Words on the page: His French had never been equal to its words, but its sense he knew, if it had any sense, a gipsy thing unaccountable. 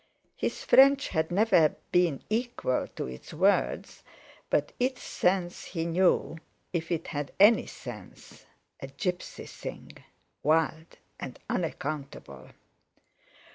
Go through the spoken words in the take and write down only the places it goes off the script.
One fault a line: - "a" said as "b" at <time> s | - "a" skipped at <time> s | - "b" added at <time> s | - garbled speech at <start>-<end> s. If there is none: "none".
- "wild and" added at 10.4 s